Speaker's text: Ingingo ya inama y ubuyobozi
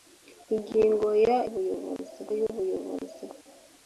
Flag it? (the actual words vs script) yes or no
yes